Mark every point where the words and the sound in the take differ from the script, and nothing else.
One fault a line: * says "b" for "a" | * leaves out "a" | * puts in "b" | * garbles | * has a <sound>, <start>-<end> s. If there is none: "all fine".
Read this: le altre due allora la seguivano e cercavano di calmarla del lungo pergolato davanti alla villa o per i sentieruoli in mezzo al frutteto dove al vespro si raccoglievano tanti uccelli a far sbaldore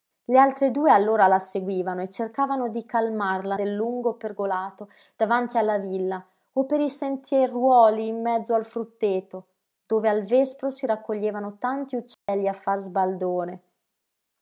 * has a dropout, 12.1-12.3 s